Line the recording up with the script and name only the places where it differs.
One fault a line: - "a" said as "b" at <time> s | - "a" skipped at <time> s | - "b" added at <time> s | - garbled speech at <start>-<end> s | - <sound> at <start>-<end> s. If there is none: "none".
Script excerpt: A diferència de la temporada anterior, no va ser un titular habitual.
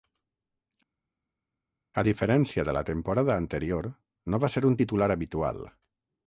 none